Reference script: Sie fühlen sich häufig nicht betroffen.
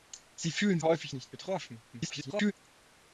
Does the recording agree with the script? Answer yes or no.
no